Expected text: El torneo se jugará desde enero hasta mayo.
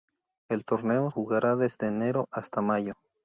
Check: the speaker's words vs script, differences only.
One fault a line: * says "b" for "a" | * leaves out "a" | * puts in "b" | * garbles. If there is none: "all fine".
* leaves out "se"